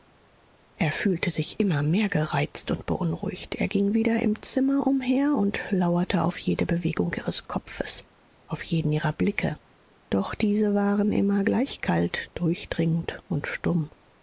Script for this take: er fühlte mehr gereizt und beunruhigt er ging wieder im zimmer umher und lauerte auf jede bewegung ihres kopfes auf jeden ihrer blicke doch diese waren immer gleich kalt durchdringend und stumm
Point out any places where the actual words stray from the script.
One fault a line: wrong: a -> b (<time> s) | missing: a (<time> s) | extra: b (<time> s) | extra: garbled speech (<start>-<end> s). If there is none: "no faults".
extra: sich immer (1.3 s)